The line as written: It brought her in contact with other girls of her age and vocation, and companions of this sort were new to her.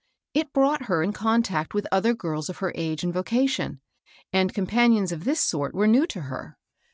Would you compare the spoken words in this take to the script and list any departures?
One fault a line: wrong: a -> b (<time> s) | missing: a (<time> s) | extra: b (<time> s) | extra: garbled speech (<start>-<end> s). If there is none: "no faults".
no faults